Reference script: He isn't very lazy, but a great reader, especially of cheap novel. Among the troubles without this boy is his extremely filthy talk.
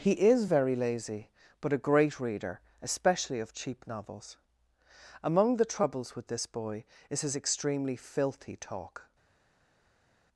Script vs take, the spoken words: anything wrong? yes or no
yes